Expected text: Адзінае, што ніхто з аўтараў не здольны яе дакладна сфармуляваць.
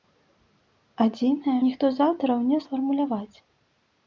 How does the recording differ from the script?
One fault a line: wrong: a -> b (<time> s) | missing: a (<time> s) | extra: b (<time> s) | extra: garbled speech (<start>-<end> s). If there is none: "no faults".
missing: што (1.6 s)
missing: здольны яе дакладна (2.6 s)